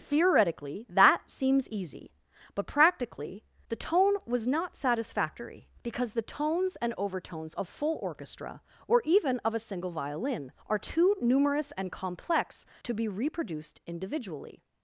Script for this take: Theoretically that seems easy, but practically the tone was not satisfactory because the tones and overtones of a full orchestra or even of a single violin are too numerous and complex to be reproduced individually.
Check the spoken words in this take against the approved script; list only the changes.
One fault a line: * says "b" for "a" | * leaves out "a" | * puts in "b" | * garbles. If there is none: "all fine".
* leaves out "a"